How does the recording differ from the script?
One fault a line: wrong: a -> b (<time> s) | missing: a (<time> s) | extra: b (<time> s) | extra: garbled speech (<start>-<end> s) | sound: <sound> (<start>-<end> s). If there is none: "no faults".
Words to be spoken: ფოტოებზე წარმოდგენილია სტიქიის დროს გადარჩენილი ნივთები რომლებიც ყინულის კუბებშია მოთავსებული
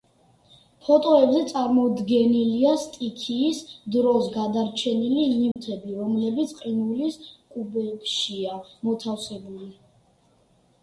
sound: dropout (5.5-5.6 s)